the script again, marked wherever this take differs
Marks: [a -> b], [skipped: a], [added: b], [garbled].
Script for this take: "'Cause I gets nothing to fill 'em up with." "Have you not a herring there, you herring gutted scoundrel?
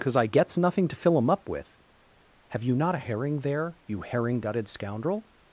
"'Cause I gets nothing to fill 'em up with." "Have you not a herring there, you herring gutted scoundrel?